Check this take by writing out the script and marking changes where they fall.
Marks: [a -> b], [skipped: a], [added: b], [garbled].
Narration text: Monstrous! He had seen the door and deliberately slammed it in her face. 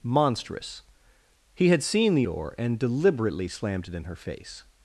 Monstrous! He had seen the door and deliberately slammed it in her face.